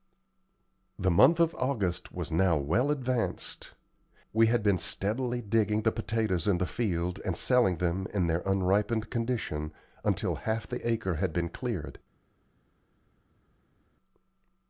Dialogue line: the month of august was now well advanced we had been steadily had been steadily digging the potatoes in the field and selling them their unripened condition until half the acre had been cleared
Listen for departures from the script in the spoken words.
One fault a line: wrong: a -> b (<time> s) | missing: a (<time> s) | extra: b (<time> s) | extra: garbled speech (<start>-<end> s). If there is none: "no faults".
missing: had been steadily (5.4 s)
extra: in (8.1 s)